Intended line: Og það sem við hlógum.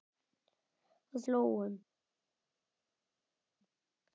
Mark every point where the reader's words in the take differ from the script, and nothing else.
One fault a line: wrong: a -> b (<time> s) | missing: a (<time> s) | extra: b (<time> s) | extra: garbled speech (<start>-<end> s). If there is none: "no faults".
missing: það sem við (1.2 s)